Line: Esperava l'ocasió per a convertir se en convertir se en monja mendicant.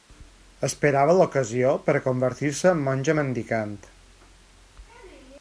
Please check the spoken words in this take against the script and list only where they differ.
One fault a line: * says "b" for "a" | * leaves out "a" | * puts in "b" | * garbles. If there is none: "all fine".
* leaves out "convertir se en"